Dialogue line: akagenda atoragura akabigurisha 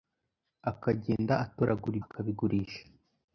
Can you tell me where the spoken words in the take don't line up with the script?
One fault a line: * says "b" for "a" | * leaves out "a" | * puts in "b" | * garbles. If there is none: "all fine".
all fine